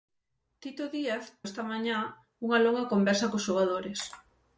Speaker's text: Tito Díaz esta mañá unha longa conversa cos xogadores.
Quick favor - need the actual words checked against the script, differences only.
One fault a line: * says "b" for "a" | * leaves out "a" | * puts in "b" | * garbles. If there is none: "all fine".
all fine